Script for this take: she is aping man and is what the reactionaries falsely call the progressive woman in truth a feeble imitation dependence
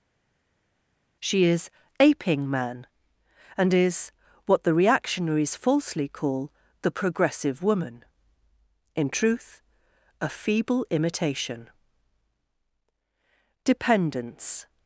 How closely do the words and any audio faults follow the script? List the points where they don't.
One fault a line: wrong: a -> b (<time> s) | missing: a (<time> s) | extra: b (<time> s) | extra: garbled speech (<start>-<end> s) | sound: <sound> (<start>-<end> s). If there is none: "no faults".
no faults